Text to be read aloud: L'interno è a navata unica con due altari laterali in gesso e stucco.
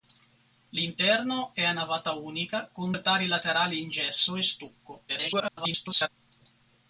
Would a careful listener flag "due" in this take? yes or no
yes